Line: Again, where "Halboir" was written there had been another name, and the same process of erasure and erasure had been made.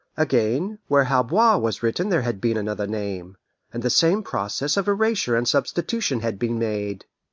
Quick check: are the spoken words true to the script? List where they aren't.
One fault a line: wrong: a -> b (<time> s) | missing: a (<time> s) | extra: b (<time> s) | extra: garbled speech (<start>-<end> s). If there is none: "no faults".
wrong: erasure -> substitution (5.5 s)